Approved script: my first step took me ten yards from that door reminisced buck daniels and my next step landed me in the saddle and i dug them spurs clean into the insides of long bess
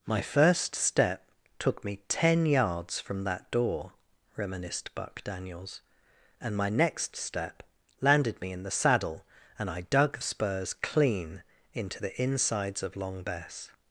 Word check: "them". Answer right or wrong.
wrong